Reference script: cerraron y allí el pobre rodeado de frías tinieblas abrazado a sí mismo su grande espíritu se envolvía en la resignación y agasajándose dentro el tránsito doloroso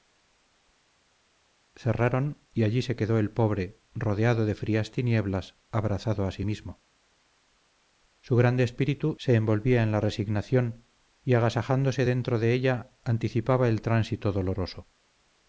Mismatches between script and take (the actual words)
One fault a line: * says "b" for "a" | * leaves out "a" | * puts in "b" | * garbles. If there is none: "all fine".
* puts in "se quedó"
* puts in "de ella anticipaba"